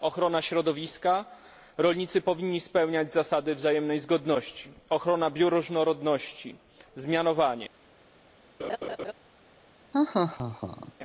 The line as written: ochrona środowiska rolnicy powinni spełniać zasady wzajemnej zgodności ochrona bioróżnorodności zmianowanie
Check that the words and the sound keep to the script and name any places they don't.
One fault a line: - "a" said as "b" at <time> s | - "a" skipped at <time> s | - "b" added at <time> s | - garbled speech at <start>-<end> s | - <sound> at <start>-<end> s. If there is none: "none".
- laugh at 8.6-9.1 s
- laugh at 9.9-10.9 s